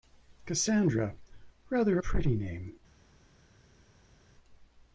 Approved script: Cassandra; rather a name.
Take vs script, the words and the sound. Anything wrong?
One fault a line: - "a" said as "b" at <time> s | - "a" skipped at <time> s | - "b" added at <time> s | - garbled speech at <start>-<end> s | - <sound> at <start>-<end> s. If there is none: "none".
- "pretty" added at 2.0 s